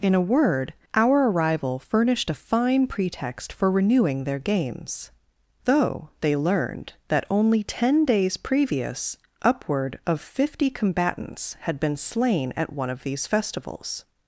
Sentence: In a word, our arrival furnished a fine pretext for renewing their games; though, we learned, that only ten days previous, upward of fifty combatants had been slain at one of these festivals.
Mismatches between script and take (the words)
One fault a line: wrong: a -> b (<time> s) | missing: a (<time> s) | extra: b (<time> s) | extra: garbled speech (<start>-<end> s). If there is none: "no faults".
wrong: we -> they (6.2 s)